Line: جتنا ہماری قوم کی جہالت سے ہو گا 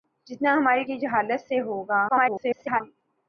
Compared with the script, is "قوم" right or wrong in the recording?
wrong